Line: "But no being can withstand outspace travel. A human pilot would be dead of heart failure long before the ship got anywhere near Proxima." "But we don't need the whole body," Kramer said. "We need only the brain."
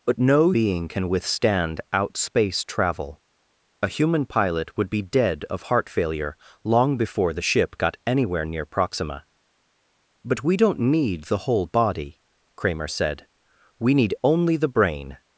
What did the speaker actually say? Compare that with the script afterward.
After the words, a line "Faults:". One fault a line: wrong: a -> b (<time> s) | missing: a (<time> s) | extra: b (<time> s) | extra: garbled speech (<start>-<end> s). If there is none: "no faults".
"But no being can withstand outspace travel. A human pilot would be dead of heart failure long before the ship got anywhere near Proxima." "But we don't need the whole body," Kramer said. "We need only the brain."
Faults:
no faults